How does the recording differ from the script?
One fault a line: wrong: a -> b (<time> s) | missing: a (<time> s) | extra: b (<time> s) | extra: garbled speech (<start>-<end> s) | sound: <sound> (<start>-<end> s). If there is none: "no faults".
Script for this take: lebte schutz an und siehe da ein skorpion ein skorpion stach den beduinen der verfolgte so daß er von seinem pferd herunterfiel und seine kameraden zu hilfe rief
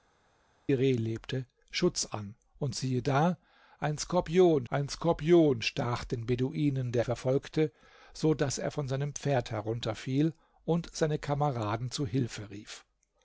no faults